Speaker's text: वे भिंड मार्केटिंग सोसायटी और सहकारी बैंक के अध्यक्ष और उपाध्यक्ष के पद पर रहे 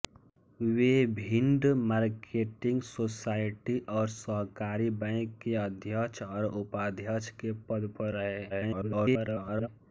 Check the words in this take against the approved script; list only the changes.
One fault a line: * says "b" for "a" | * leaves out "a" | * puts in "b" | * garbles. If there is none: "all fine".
* garbles